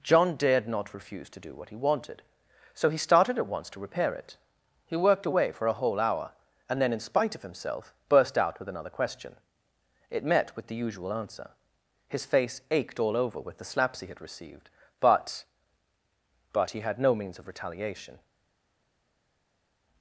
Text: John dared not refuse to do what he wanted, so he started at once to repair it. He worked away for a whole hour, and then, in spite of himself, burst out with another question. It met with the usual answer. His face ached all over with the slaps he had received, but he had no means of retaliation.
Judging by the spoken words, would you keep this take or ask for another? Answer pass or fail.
fail